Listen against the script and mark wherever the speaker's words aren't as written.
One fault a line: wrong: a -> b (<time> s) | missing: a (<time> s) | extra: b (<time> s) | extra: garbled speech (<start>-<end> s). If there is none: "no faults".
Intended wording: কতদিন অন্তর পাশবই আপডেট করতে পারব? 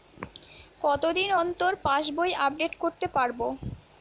no faults